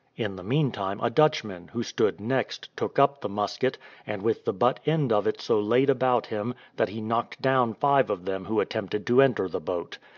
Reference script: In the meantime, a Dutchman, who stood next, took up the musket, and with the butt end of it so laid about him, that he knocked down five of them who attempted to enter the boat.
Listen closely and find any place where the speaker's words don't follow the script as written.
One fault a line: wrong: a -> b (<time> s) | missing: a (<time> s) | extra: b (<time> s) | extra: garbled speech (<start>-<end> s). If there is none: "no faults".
no faults